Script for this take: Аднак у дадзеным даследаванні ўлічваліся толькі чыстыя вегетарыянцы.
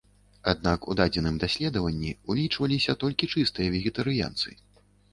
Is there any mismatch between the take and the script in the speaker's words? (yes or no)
no